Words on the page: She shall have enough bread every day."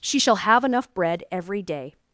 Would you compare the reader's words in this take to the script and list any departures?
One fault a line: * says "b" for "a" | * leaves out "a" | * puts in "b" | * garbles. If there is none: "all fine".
all fine